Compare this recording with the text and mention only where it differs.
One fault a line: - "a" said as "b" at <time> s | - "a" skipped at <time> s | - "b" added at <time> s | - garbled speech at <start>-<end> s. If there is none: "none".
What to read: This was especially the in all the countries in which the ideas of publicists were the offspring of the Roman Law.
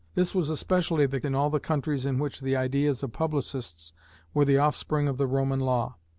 none